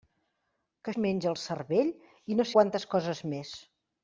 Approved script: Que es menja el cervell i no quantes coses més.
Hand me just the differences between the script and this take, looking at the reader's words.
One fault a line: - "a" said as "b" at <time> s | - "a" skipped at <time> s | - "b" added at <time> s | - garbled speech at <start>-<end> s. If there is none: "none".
none